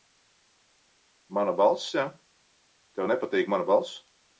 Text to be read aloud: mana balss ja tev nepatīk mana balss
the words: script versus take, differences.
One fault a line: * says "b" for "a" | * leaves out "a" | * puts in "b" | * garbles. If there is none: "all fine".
all fine